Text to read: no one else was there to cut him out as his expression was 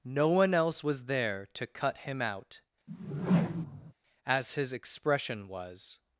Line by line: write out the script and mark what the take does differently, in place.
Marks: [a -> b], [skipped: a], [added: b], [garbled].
no one else was there to cut him out as his expression was